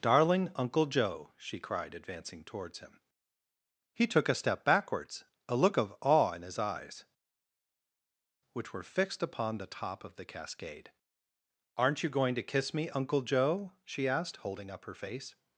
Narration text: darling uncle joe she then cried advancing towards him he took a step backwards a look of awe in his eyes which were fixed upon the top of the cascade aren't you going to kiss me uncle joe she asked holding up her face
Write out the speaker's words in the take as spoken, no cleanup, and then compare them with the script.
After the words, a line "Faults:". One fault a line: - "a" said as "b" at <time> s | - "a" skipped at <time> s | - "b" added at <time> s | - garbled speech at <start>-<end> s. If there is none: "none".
darling uncle joe she cried advancing towards him he took a step backwards a look of awe in his eyes which were fixed upon the top of the cascade aren't you going to kiss me uncle joe she asked holding up her face
Faults:
- "then" skipped at 1.6 s